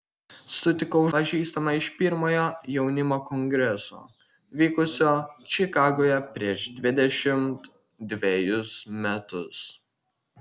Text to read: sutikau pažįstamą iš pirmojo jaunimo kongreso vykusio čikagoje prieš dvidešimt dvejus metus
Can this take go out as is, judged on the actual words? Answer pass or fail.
pass